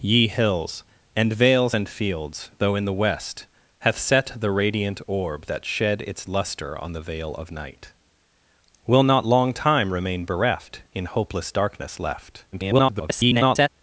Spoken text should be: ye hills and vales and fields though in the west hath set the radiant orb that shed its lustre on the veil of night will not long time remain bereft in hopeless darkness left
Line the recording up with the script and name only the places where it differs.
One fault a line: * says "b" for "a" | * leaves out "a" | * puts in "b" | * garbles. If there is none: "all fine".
* garbles